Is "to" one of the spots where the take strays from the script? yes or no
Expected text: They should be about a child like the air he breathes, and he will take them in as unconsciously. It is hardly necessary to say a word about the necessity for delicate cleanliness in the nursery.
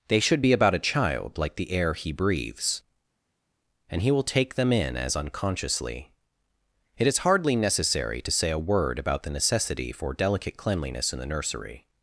no